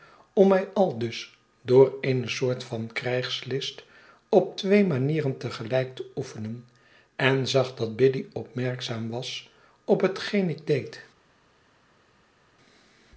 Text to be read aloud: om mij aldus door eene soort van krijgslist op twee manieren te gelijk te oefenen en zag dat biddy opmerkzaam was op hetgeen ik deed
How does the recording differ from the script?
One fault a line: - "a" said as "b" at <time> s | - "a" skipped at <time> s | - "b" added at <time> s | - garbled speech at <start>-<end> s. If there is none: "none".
none